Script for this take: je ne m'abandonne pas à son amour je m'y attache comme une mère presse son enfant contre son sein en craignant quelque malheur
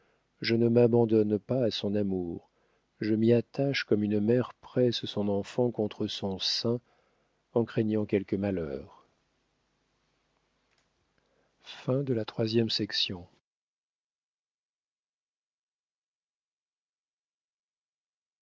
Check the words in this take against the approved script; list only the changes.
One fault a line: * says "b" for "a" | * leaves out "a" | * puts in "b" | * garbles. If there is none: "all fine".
all fine